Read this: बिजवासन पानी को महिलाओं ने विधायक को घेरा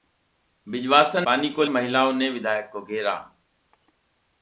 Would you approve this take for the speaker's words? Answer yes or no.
yes